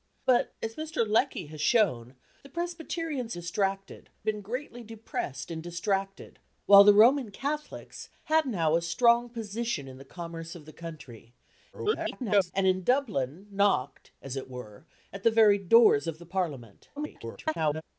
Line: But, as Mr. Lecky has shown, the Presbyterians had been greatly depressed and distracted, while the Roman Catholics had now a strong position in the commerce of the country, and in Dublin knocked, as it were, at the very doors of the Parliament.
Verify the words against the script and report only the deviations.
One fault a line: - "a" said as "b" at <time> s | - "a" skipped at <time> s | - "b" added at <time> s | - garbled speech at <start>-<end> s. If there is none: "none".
- "had" said as "distracted" at 3.3 s
- garbled speech at 11.7-12.5 s
- garbled speech at 17.0-17.8 s